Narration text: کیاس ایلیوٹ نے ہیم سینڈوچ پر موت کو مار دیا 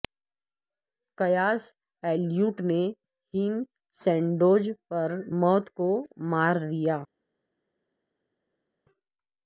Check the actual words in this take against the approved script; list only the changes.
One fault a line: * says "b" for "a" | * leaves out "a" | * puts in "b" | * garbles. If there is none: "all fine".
all fine